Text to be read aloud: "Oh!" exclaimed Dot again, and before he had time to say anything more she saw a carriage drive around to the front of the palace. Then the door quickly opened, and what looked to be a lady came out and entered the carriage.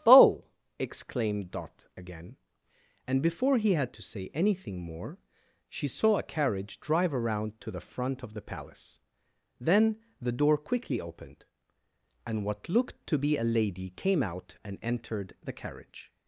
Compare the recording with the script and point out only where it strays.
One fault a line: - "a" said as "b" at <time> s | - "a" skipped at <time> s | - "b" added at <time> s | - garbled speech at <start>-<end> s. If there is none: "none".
- "time" skipped at 4.0 s